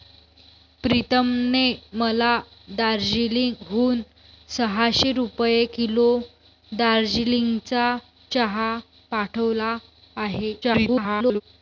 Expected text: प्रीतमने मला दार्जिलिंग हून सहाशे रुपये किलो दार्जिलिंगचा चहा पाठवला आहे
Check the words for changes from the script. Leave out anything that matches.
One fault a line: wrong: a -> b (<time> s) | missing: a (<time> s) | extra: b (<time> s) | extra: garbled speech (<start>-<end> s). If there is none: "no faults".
extra: garbled speech (10.6-11.4 s)